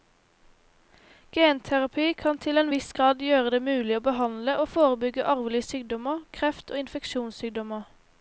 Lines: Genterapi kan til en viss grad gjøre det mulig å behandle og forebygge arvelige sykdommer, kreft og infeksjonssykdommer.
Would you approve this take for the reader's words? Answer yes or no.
yes